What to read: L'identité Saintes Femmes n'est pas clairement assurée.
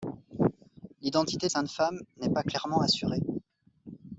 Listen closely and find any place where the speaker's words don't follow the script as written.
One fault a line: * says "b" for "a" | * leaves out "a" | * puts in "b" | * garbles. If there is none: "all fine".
all fine